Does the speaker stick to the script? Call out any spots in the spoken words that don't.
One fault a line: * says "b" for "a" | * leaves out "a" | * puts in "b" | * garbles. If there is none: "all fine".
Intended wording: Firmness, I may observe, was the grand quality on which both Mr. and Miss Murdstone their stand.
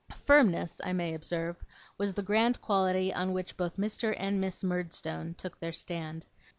* puts in "took"